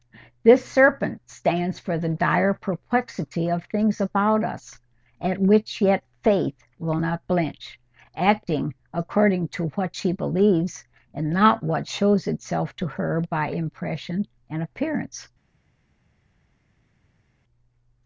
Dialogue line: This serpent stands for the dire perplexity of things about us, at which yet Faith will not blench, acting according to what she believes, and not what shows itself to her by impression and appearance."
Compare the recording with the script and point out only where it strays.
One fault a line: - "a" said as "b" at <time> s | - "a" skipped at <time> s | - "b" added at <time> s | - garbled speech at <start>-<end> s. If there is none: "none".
none